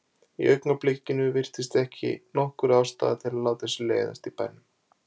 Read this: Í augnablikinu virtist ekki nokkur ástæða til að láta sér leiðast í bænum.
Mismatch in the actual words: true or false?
false